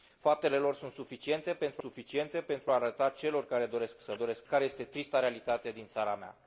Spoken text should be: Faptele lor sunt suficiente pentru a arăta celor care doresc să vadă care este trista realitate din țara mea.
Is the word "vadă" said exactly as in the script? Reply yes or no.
no